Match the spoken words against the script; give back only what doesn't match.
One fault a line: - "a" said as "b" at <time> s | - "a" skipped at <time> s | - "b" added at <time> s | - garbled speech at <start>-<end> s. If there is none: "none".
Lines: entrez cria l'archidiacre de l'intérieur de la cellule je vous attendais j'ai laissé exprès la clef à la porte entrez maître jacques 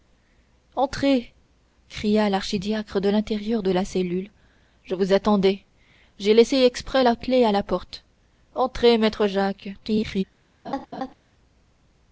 - garbled speech at 9.7-10.2 s